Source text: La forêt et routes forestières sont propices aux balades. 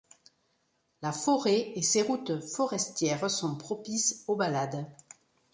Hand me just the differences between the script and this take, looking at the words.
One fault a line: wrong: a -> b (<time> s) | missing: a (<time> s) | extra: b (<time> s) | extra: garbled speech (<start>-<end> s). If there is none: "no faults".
extra: ses (1.8 s)